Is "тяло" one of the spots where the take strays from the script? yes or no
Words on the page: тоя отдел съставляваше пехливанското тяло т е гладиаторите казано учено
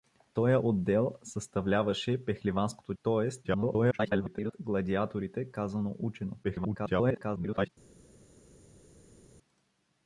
yes